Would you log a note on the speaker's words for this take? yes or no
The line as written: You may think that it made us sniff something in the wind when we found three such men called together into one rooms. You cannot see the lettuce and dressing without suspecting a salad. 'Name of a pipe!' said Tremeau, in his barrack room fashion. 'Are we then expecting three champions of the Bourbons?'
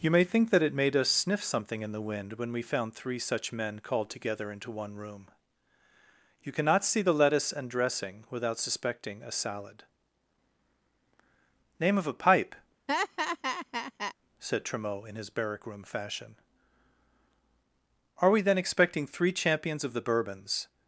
yes